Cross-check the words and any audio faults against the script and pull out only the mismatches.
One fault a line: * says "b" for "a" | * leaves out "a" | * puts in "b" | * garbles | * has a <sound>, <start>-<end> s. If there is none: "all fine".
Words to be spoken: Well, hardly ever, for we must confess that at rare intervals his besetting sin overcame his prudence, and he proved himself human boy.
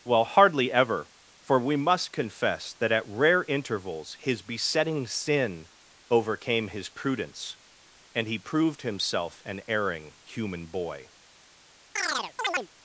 * puts in "an erring"
* has a chirp, 12.0-12.7 s